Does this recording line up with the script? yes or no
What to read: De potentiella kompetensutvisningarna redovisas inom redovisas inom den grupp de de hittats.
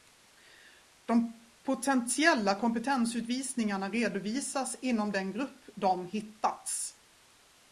no